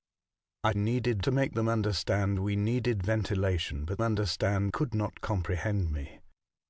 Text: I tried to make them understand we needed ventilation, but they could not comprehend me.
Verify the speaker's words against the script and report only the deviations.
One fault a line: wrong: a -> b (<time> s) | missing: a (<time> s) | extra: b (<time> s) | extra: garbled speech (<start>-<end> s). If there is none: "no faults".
wrong: tried -> needed (0.8 s)
wrong: they -> understand (4.0 s)